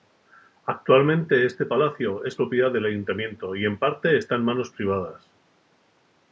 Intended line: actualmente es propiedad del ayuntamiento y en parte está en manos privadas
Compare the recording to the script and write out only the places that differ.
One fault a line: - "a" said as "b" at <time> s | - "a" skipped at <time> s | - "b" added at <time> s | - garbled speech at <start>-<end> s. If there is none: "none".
- "este palacio" added at 1.4 s